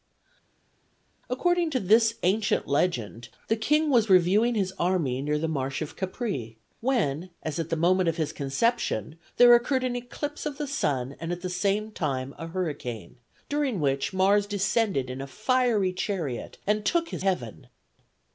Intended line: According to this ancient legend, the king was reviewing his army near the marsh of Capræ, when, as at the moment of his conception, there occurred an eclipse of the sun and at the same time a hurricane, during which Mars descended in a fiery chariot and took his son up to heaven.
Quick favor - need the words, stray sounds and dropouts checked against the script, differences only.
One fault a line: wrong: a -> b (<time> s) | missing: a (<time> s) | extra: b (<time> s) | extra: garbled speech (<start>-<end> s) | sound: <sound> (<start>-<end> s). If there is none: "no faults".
missing: son up to (17.2 s)